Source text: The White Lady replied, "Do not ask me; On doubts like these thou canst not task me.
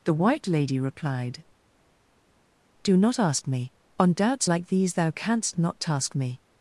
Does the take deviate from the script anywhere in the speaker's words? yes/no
no